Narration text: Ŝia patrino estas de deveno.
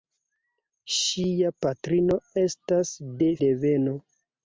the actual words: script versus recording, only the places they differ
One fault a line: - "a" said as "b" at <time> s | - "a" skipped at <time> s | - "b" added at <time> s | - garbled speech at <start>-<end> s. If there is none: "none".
none